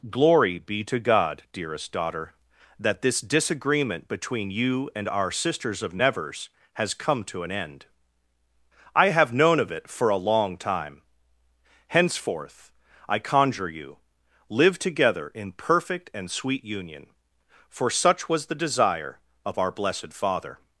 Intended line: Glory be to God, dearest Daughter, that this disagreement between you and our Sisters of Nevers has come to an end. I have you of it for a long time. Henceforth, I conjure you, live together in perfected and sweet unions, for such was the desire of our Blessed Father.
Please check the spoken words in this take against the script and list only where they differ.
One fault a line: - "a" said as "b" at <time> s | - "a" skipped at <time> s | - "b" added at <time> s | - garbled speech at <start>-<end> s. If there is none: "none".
- "you" said as "known" at 9.3 s
- "perfected" said as "perfect" at 15.5 s
- "unions" said as "union" at 16.6 s